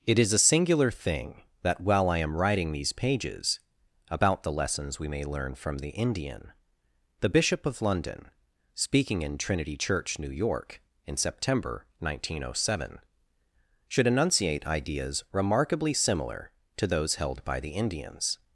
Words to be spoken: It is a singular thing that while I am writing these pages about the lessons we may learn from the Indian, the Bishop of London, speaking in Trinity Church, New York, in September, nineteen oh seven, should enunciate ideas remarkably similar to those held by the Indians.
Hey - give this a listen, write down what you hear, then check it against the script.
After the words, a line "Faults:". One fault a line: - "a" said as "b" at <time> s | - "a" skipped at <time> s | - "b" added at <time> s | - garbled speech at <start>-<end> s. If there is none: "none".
It is a singular thing that while I am writing these pages about the lessons we may learn from the Indian, the Bishop of London, speaking in Trinity Church, New York, in September, nineteen oh seven, should enunciate ideas remarkably similar to those held by the Indians.
Faults:
none